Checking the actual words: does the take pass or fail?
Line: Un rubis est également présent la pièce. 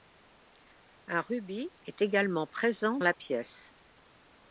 pass